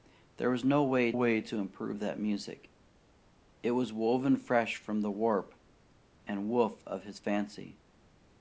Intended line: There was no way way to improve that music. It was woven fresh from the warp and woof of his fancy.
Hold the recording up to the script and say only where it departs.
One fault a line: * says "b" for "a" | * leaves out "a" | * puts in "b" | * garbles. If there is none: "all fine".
all fine